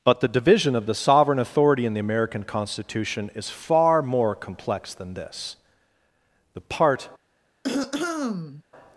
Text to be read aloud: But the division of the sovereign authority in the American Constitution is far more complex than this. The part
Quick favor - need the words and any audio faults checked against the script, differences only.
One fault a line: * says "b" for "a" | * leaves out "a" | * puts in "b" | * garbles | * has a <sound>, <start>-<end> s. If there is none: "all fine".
* has a throat clearing, 7.6-8.6 s